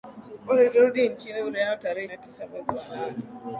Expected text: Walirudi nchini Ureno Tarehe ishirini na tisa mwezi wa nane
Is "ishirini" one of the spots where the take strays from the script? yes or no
yes